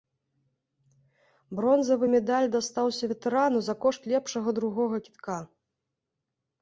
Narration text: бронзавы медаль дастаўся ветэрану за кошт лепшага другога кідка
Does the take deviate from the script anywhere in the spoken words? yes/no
no